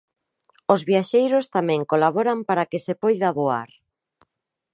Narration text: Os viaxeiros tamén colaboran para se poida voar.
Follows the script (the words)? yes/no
no